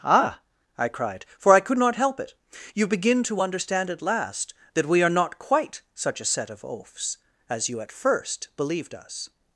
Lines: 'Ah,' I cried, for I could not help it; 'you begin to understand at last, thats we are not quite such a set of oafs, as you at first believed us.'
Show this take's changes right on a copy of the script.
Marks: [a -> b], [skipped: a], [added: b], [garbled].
'Ah,' I cried, for I could not help it; 'you begin to understand at last, [thats -> that] we are not quite such a set of oafs, as you at first believed us.'